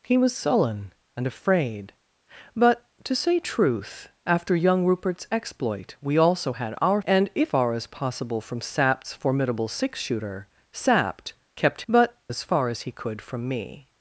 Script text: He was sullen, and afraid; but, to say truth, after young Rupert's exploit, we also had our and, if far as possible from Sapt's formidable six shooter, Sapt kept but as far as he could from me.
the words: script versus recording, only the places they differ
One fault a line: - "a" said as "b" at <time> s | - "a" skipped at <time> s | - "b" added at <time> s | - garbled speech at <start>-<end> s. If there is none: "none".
none